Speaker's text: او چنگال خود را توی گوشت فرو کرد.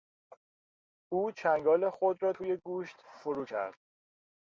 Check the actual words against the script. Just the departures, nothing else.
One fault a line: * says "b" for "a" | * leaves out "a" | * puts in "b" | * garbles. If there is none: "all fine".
all fine